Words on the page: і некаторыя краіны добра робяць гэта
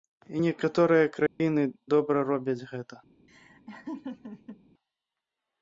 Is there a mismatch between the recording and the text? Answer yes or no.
no